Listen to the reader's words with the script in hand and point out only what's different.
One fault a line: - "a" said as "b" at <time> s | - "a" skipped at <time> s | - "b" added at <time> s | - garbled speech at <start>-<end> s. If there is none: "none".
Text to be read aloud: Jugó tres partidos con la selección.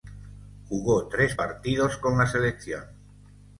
none